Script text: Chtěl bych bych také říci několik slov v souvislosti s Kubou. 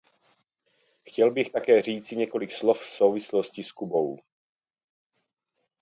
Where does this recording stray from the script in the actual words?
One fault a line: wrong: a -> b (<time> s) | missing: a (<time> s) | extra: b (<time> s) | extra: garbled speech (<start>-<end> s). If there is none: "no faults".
missing: bych (1.5 s)